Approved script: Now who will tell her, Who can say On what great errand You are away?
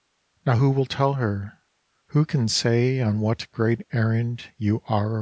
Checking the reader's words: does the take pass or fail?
pass